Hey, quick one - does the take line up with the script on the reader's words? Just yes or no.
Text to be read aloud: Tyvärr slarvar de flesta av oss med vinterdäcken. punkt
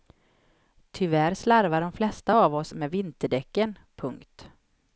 yes